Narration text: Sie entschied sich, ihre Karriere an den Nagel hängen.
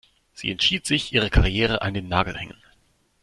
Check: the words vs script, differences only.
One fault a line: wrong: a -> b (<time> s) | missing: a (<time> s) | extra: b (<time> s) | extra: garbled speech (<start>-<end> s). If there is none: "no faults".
no faults